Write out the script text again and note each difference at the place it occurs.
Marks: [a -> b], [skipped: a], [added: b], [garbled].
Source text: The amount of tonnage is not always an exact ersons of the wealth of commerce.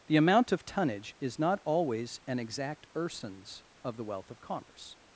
The amount of tonnage is not always an exact ersons of the wealth of commerce.